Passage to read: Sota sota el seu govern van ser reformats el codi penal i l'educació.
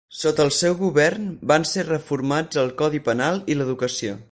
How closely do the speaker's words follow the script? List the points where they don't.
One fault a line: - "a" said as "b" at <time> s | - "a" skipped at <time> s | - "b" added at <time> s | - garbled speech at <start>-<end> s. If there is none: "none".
- "sota" skipped at 0.4 s